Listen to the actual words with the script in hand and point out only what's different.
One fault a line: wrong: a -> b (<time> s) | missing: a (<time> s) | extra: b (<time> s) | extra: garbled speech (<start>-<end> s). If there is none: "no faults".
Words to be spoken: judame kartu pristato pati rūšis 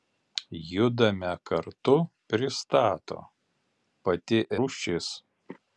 no faults